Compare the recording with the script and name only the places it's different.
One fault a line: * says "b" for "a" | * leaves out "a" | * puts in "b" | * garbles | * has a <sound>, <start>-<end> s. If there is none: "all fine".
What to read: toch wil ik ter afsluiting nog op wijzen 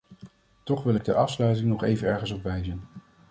* puts in "even ergens"